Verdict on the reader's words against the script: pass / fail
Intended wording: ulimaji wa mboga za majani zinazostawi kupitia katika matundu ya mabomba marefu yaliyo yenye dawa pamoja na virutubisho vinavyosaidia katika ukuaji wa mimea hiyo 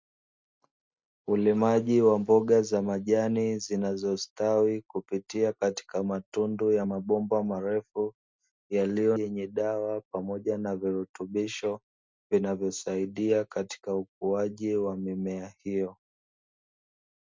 pass